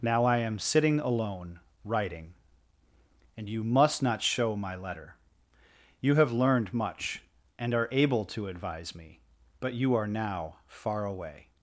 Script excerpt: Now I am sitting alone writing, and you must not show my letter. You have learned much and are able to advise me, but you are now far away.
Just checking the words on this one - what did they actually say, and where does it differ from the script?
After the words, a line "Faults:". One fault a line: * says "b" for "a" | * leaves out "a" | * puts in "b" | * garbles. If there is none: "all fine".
Now I am sitting alone writing, and you must not show my letter. You have learned much and are able to advise me, but you are now far away.
Faults:
all fine